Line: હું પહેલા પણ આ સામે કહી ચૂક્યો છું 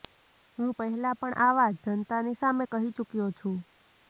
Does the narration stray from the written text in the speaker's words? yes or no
yes